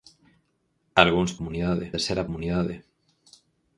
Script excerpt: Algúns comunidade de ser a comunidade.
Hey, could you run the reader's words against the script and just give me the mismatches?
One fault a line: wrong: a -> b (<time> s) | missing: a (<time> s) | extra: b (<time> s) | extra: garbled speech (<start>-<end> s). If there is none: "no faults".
no faults